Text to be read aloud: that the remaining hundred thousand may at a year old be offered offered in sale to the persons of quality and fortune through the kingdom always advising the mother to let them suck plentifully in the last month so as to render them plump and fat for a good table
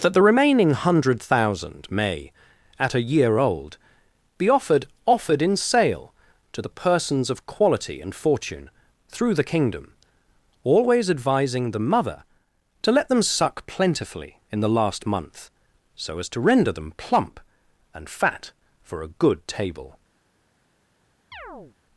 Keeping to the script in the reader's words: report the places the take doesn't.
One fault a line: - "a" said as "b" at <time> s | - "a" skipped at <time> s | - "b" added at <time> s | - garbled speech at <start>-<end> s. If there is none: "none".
none